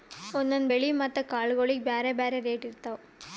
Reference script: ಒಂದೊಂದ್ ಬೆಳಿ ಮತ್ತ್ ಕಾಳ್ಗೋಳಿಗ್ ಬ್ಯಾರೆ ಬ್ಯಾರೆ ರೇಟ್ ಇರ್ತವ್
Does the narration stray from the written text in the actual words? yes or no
no